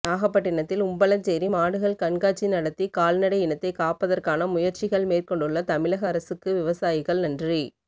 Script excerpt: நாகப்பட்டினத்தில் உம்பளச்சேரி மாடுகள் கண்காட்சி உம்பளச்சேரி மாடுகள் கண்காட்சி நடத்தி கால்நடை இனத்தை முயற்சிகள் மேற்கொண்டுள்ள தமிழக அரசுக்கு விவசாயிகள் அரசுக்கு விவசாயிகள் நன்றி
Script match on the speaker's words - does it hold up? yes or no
no